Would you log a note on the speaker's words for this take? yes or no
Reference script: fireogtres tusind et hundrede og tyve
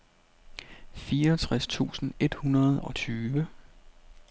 no